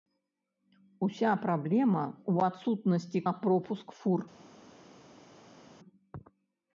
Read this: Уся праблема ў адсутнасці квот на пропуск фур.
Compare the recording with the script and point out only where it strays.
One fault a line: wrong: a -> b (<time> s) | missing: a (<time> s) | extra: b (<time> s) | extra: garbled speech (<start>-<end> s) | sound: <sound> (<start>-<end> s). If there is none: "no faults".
missing: квот (3.2 s)